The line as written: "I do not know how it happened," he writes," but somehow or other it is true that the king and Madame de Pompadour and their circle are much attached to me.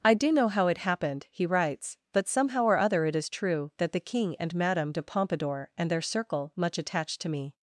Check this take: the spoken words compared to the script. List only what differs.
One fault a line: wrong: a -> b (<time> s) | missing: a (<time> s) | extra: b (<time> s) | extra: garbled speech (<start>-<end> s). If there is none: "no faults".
missing: not (0.3 s)
missing: are (6.5 s)